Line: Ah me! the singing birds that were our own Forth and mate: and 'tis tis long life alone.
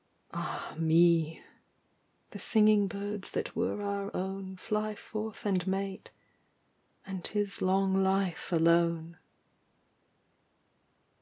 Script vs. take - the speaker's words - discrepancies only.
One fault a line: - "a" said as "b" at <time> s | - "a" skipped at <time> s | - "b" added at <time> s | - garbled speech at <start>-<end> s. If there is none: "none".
- "Fly" added at 4.5 s
- "tis" skipped at 7.6 s